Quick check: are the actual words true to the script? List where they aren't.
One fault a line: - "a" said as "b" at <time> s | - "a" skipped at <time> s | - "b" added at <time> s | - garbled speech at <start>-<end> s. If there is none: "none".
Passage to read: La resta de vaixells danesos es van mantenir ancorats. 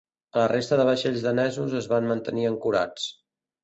none